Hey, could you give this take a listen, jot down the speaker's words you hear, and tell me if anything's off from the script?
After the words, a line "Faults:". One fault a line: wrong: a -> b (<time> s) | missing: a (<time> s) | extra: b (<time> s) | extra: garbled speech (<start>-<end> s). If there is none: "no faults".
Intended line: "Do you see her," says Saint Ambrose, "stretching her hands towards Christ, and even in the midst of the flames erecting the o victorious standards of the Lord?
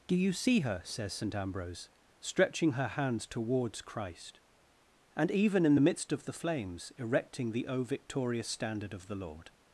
"Do you see her," says Saint Ambrose, "stretching her hands towards Christ, and even in the midst of the flames erecting the o victorious standard of the Lord?
Faults:
wrong: standards -> standard (8.5 s)